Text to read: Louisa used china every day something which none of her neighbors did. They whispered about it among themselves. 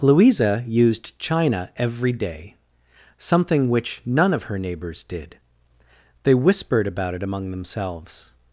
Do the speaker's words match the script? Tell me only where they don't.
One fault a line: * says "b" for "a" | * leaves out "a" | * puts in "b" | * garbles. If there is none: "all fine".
all fine